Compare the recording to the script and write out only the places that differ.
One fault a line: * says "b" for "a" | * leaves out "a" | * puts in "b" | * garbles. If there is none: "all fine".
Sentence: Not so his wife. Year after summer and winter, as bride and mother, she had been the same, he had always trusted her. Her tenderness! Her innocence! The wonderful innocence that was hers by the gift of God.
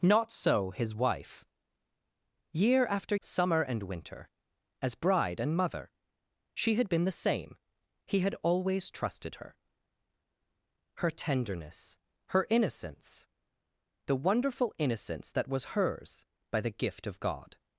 all fine